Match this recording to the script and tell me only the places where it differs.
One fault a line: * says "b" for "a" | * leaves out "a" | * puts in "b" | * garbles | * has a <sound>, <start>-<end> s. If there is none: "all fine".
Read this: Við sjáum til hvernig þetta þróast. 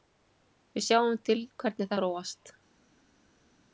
* leaves out "þetta"